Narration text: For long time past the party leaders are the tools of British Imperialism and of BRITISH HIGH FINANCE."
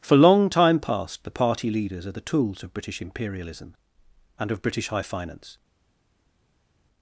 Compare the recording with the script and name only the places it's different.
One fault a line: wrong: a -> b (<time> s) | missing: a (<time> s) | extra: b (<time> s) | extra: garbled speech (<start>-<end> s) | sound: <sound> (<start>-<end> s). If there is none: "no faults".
no faults